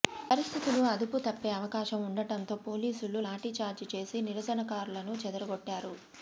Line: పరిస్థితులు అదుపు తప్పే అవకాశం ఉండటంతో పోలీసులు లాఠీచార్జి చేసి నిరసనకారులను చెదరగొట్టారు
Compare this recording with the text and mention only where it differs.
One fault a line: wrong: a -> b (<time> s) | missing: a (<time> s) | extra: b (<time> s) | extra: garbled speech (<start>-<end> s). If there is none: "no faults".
no faults